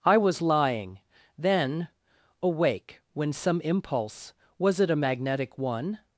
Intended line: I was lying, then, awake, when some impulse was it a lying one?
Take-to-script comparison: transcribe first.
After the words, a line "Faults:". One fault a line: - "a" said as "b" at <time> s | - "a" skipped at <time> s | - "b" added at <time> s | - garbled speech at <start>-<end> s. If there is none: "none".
I was lying, then, awake, when some impulse was it a magnetic one?
Faults:
- "lying" said as "magnetic" at 4.9 s